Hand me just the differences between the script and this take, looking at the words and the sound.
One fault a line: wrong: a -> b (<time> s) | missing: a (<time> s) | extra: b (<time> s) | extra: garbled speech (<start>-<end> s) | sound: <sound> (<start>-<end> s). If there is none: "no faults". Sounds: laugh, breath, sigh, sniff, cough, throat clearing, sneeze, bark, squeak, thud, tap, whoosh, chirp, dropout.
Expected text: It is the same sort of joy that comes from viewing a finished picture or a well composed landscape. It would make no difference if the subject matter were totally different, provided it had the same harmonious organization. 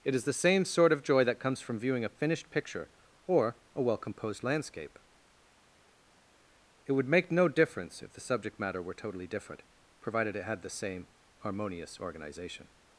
no faults